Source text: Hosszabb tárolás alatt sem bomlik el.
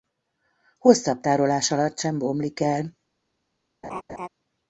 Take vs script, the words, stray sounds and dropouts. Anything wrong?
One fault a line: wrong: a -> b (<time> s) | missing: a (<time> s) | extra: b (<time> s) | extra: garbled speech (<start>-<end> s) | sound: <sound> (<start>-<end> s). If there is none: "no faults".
sound: laugh (3.8-4.3 s)